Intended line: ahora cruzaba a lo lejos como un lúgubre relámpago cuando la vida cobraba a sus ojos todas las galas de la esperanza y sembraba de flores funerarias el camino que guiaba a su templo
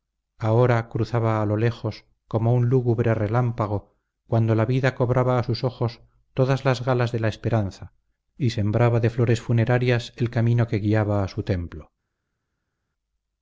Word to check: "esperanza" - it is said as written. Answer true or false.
true